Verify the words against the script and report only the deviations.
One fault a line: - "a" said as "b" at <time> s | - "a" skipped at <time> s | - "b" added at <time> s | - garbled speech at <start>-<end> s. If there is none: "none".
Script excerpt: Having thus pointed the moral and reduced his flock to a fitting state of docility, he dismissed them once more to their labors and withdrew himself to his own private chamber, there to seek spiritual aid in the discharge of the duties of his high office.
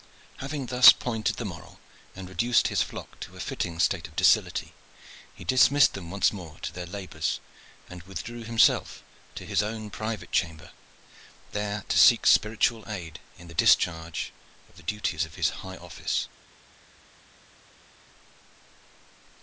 none